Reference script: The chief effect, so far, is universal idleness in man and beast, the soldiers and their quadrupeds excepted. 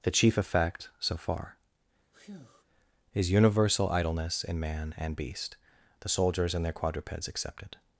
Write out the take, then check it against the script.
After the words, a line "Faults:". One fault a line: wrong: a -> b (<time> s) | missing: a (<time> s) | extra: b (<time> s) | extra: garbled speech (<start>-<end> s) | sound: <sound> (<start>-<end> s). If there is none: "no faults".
The chief effect, so far, is universal idleness in man and beast, the soldiers and their quadrupeds excepted.
Faults:
sound: breath (2.1-2.6 s)